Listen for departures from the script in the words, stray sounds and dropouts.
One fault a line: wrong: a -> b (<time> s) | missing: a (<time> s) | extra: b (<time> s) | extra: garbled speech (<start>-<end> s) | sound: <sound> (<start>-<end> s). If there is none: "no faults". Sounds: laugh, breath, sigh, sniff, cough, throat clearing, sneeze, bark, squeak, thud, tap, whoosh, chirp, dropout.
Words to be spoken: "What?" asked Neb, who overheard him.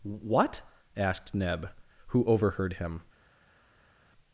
no faults